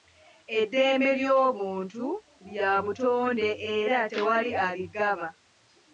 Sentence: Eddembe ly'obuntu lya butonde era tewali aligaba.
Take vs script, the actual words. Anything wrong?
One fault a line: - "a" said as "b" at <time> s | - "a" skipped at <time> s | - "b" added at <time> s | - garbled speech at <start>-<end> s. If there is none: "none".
none